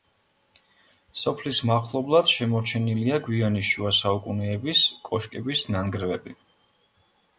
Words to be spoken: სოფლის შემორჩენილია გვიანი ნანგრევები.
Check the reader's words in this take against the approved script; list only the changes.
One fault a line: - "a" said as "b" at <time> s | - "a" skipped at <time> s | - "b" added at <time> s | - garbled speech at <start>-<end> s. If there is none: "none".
- "მახლობლად" added at 1.7 s
- "შუა საუკუნეების კოშკების" added at 3.7 s